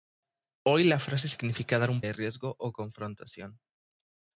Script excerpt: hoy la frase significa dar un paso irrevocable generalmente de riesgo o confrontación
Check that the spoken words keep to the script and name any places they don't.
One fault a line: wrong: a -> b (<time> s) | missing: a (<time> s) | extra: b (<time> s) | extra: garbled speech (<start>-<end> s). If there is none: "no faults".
missing: paso irrevocable generalmente (2.0 s)